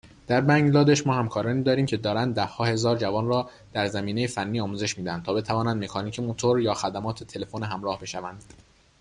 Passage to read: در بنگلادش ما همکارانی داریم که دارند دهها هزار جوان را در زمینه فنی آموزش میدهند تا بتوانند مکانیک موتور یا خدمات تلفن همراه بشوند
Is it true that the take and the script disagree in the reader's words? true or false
false